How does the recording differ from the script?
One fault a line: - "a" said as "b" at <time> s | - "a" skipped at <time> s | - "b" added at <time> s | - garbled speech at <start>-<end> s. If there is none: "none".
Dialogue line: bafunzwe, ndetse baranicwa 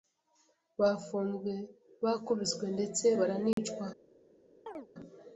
- "bakubiswe" added at 2.0 s